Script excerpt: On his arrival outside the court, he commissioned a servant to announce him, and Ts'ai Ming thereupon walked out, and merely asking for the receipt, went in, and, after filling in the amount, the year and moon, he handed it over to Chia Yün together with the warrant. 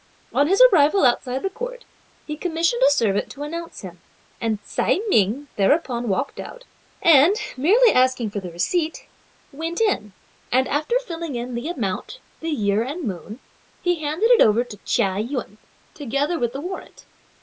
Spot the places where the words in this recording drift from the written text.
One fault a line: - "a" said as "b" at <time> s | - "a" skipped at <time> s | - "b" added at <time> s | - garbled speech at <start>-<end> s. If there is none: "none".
none